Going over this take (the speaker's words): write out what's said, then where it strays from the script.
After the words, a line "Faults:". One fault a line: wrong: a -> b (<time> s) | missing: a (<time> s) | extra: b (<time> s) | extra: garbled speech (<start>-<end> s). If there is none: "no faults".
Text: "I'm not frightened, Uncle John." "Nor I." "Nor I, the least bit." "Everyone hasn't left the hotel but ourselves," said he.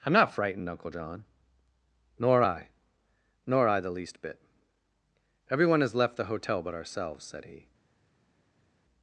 "I'm not frightened, Uncle John." "Nor I." "Nor I, the least bit." "Everyone has left the hotel but ourselves," said he.
Faults:
wrong: hasn't -> has (5.8 s)